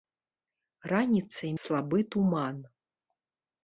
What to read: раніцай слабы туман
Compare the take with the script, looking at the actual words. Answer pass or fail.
pass